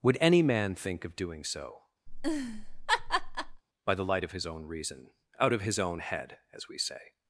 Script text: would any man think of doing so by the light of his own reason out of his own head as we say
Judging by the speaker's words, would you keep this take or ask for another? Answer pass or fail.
pass